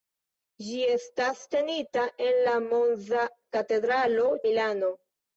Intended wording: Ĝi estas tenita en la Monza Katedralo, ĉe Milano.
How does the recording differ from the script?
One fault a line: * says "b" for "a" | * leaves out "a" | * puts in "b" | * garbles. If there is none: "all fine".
* leaves out "ĉe"